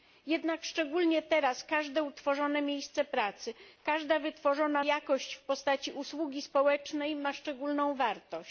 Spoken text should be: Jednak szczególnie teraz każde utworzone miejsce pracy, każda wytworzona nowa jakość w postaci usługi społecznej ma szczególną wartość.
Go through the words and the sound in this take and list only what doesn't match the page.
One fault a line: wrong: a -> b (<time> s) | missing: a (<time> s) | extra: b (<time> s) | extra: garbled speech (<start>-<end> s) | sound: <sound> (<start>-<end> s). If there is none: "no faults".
missing: nowa (4.8 s)